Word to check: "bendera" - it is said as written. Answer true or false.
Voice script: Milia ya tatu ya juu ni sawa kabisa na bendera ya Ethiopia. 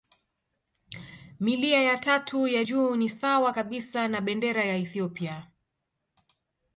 true